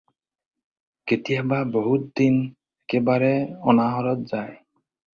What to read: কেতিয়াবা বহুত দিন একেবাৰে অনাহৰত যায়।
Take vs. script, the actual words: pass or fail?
pass